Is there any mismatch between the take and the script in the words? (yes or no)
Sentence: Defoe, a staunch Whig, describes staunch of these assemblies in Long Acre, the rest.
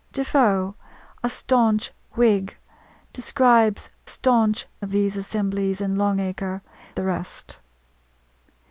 no